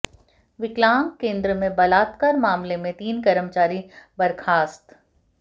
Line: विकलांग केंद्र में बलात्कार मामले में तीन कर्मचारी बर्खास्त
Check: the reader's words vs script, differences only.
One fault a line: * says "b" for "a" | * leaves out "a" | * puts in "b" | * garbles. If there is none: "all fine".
all fine